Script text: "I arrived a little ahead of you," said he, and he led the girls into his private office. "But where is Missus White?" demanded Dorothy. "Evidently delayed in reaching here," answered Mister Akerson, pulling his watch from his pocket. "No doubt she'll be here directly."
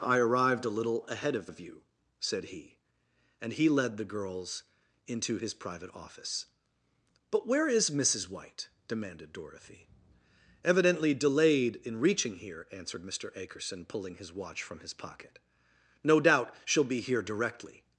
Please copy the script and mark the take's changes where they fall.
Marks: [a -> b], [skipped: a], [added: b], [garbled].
"I arrived a little ahead of [added: of] you," said he, and he led the girls into his private office. "But where is Missus White?" demanded Dorothy. "Evidently delayed in reaching here," answered Mister Akerson, pulling his watch from his pocket. "No doubt she'll be here directly."